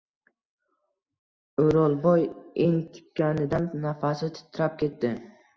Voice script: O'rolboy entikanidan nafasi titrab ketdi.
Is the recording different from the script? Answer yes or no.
no